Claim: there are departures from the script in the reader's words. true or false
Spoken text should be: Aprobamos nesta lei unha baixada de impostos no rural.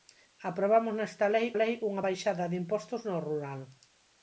true